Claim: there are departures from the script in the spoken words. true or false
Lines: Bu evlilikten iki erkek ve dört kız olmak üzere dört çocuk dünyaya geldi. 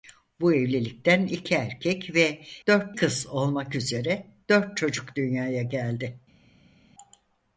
false